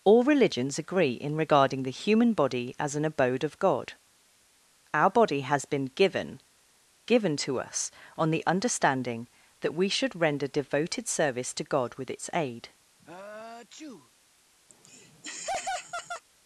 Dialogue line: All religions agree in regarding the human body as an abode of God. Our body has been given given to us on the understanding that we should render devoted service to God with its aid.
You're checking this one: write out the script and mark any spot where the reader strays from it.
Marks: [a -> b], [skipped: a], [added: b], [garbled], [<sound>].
All religions agree in regarding the human body as an abode of God. Our body has been given given to us on the understanding that we should render devoted service to God with its aid. [sneeze] [laugh]